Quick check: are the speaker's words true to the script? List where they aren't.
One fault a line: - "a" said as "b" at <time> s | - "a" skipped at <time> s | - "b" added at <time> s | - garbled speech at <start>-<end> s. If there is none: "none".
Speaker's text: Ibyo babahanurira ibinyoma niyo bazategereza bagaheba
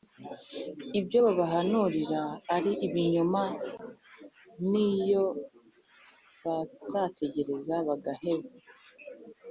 - "ari" added at 2.5 s